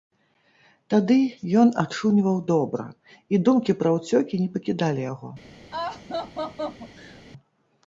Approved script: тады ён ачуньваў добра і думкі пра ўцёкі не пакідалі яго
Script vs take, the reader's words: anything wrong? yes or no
no